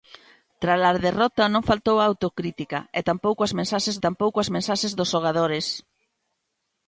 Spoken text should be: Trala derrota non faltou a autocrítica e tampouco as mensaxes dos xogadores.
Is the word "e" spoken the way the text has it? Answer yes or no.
yes